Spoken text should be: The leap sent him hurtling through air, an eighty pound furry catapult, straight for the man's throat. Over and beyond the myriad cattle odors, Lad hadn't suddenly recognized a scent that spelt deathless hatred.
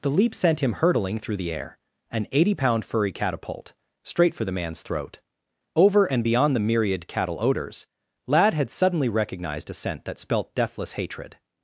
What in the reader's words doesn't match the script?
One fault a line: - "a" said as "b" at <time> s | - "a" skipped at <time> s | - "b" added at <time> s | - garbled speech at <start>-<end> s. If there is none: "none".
- "the" added at 1.4 s
- "hadn't" said as "had" at 8.5 s